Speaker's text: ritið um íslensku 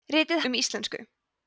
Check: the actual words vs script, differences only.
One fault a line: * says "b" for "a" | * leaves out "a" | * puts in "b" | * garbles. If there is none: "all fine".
all fine